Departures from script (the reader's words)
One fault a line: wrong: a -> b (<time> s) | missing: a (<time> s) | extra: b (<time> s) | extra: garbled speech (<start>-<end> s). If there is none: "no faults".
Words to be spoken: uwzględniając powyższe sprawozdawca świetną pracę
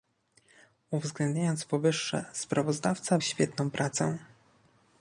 no faults